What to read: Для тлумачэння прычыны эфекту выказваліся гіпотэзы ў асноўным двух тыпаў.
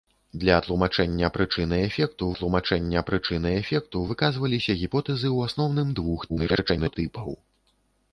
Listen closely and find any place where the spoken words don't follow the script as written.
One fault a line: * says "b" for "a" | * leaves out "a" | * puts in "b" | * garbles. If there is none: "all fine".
* puts in "тлумачэння прычыны эфекту"
* garbles